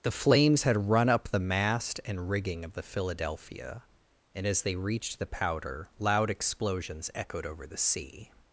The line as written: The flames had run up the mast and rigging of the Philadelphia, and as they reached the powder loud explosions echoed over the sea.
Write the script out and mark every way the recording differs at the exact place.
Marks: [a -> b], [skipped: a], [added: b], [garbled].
The flames had run up the mast and rigging of the Philadelphia, and as they reached the powder loud explosions echoed over the sea.